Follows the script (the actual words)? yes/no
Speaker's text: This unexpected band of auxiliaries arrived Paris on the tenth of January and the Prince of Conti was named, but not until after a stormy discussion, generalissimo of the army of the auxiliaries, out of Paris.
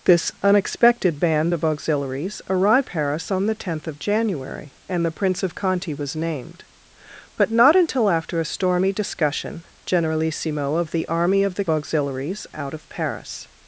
yes